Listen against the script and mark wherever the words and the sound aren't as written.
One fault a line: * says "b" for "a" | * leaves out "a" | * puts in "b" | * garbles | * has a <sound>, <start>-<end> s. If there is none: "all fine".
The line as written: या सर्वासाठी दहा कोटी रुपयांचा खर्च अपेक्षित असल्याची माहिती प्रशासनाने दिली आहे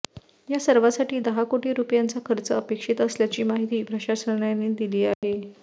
* has a dropout, 5.1-5.2 s